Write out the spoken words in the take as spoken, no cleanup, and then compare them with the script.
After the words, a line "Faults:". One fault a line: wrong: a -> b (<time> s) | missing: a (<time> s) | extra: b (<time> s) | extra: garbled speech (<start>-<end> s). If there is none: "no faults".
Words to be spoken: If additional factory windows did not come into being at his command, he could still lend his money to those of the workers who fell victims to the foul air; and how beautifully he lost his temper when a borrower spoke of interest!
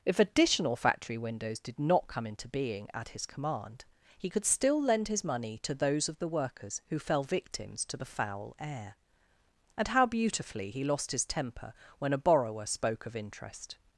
If additional factory windows did not come into being at his command, he could still lend his money to those of the workers who fell victims to the foul air; and how beautifully he lost his temper when a borrower spoke of interest!
Faults:
no faults